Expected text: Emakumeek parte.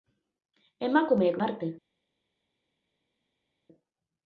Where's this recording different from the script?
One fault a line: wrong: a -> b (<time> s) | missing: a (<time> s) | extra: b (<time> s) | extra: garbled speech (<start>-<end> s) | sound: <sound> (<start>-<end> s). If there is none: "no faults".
no faults